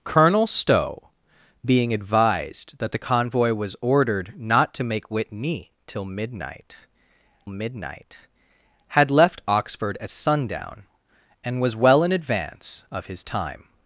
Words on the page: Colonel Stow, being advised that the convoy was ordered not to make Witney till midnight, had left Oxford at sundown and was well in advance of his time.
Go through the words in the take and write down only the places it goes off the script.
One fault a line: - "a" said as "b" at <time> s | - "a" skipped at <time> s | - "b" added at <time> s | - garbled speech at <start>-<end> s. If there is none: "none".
- "midnight" added at 7.5 s